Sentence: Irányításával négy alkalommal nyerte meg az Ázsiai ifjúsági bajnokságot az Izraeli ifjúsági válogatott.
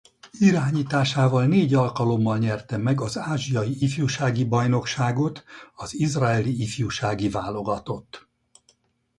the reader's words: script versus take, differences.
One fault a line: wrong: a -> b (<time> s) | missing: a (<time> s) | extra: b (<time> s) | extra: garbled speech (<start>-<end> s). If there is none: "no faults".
no faults